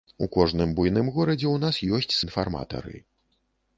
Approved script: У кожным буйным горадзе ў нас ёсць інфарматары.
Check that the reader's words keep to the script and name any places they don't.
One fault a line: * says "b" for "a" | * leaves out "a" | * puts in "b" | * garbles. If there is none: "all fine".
all fine